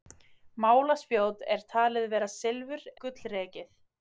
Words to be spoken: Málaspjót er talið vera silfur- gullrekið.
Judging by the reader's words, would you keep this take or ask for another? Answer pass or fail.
pass